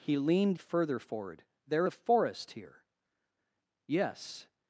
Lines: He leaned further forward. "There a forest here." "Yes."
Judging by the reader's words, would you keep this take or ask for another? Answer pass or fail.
pass